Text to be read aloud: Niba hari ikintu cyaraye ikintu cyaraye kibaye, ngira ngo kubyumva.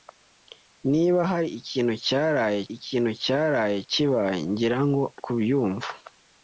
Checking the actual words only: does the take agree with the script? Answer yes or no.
yes